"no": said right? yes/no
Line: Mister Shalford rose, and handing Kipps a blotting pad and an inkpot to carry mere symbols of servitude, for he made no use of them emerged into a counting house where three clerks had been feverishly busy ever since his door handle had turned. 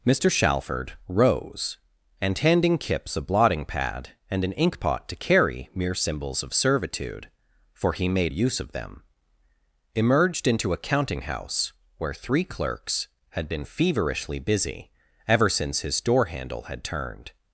no